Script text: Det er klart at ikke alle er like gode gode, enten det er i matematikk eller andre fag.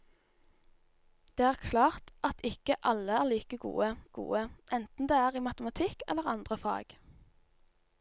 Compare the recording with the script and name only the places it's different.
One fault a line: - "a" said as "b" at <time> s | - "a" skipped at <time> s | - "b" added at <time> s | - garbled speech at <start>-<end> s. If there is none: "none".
none